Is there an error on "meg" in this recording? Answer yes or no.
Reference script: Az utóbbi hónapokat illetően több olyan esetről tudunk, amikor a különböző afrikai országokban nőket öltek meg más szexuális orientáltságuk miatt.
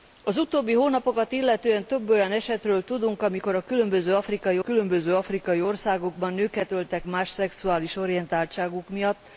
yes